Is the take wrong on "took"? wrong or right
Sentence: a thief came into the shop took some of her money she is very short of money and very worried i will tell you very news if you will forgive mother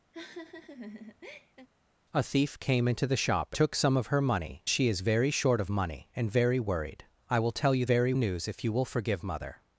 right